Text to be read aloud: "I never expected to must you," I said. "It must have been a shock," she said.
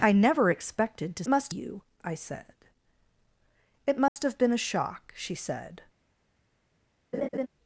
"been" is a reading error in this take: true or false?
false